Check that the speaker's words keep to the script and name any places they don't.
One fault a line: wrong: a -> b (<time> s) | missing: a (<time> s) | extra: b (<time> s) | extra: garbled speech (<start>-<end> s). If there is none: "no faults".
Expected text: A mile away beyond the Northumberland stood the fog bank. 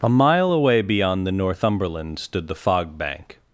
no faults